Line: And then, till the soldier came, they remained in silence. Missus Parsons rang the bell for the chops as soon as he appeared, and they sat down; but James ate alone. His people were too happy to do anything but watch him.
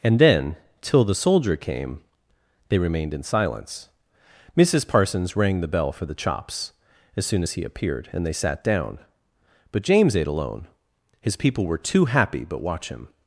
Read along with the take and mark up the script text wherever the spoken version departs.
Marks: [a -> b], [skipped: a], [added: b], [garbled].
And then, till the soldier came, they remained in silence. Missus Parsons rang the bell for the chops as soon as he appeared, and they sat down; but James ate alone. His people were too happy [skipped: to do anything] but watch him.